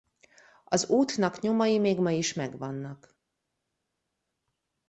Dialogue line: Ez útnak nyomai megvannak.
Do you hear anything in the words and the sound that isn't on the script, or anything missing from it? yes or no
yes